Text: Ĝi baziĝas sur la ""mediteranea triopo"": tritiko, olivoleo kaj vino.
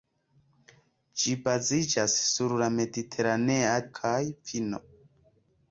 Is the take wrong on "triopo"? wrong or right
wrong